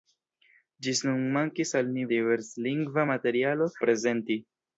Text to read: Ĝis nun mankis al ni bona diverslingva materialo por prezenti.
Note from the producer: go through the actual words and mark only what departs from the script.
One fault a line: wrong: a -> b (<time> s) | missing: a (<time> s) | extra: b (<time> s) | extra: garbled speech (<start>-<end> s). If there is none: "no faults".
missing: bona (2.1 s)
missing: por (3.7 s)